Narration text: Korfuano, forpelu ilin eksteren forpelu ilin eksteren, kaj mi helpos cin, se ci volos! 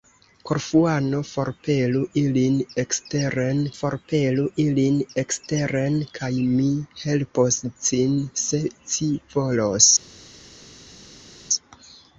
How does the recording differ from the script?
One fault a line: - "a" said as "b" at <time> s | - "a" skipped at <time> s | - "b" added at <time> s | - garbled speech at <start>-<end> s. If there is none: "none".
none